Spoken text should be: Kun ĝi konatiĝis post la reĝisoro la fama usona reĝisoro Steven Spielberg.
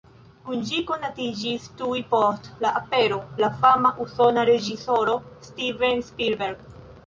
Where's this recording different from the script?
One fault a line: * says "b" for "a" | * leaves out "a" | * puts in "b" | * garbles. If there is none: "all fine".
* puts in "tuj"
* says "apero" for "reĝisoro"